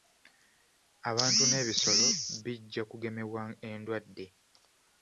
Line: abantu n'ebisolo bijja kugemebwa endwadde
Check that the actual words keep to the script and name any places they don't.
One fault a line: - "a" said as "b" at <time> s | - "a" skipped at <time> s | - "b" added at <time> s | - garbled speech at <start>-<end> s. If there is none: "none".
none